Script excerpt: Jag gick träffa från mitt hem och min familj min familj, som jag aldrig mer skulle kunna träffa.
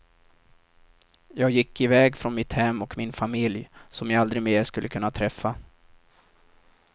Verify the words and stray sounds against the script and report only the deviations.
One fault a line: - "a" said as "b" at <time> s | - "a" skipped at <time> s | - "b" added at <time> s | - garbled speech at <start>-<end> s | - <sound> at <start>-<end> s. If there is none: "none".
- "träffa" said as "iväg" at 1.8 s
- "min familj" skipped at 3.7 s